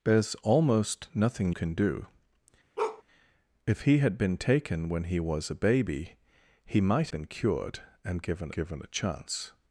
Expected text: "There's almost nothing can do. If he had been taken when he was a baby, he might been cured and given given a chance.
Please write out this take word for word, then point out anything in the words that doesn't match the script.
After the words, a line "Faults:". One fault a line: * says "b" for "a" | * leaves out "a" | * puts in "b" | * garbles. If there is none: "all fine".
"There's almost nothing can do. If he had been taken when he was a baby, he might been cured and given given a chance.
Faults:
all fine